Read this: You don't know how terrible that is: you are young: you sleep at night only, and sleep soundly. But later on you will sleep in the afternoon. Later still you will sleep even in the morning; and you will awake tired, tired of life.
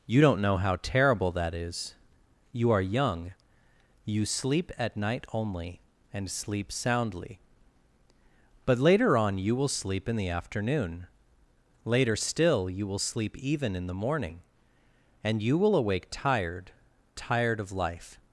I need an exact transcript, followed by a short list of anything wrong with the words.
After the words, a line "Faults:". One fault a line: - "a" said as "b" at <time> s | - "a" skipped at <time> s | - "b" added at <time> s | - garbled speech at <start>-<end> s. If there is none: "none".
You don't know how terrible that is: you are young: you sleep at night only, and sleep soundly. But later on you will sleep in the afternoon. Later still you will sleep even in the morning; and you will awake tired, tired of life.
Faults:
none